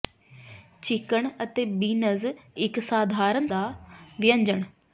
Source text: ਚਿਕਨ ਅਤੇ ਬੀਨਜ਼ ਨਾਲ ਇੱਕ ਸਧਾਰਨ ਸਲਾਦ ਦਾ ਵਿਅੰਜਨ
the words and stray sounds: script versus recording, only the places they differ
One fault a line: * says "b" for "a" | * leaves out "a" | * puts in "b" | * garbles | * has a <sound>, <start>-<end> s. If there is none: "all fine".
* leaves out "ਨਾਲ"
* leaves out "ਸਲਾਦ"